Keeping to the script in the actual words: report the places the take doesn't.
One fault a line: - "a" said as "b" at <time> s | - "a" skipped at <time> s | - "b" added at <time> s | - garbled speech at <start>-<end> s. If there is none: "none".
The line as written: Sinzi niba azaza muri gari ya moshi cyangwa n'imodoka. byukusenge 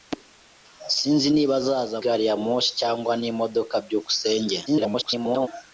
- "muri" skipped at 2.0 s
- garbled speech at 4.7-5.5 s